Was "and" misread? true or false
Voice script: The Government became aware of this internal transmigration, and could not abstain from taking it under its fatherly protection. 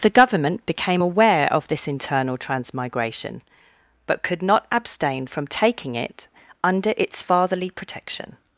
true